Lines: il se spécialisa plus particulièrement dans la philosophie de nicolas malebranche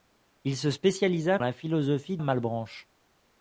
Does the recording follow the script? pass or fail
fail